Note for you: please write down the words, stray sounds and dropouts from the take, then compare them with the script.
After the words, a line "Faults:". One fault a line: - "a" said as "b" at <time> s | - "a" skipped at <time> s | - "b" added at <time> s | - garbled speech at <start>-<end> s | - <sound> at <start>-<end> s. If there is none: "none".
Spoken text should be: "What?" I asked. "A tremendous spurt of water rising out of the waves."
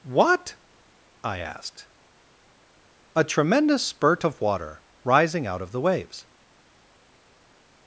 "What?" I asked. "A tremendous spurt of water rising out of the waves."
Faults:
none